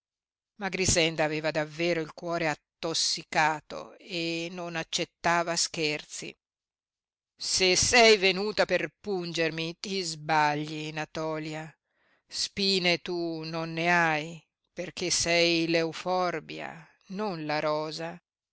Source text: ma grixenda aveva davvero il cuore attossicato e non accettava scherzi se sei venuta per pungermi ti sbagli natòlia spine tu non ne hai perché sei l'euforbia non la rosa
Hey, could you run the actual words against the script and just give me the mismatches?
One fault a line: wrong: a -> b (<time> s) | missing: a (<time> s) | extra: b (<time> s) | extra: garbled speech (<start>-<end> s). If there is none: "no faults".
no faults